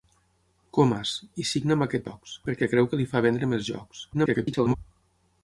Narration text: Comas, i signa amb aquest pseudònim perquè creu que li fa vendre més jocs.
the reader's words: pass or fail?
fail